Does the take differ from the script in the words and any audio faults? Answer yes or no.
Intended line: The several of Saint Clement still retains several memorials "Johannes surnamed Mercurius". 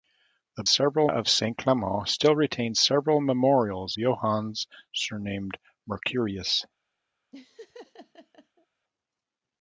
yes